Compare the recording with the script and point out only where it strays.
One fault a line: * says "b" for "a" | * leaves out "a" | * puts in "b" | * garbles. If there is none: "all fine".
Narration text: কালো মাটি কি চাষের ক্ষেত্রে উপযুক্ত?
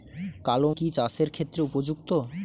* leaves out "মাটি"